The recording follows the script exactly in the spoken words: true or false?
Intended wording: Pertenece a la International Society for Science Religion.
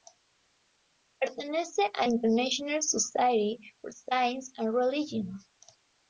false